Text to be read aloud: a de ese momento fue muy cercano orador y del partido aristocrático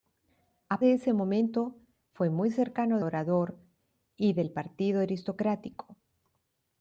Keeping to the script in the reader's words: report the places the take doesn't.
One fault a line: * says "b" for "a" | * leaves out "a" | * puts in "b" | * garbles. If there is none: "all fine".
all fine